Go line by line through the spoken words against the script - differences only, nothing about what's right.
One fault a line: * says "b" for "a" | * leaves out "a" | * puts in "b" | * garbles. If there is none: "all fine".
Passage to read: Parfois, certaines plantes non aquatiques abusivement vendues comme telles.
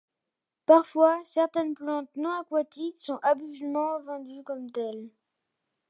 * puts in "sont"